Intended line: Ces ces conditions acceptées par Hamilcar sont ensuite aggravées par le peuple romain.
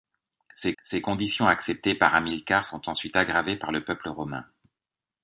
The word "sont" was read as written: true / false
true